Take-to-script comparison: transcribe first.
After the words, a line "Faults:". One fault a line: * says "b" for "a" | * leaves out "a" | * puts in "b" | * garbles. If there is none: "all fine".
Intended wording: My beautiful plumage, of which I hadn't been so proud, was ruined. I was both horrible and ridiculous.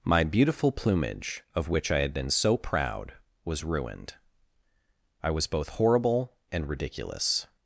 My beautiful plumage, of which I had been so proud, was ruined. I was both horrible and ridiculous.
Faults:
* says "had" for "hadn't"